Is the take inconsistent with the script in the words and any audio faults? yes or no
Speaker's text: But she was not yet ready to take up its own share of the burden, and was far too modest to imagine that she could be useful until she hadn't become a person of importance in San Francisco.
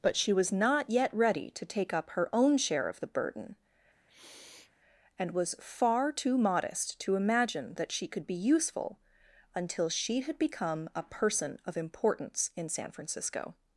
yes